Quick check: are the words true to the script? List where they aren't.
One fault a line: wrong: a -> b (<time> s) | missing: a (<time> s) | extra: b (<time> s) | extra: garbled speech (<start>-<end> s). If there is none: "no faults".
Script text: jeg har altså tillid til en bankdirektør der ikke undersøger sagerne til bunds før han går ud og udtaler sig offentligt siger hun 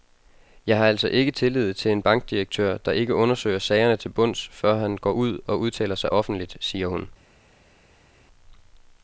extra: ikke (1.1 s)